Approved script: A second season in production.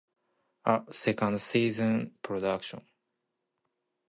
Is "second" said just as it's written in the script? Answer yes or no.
yes